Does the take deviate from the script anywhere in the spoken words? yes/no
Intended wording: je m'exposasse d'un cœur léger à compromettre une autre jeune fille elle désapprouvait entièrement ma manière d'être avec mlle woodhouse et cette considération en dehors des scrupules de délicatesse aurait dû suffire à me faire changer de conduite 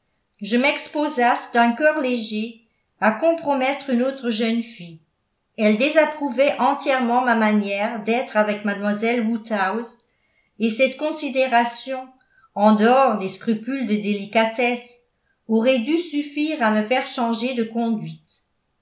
no